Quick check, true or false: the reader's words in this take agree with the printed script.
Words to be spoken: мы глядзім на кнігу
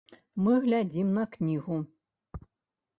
true